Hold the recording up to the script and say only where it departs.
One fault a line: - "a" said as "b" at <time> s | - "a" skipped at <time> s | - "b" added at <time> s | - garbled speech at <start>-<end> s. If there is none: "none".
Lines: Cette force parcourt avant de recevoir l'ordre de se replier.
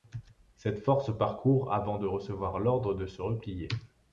none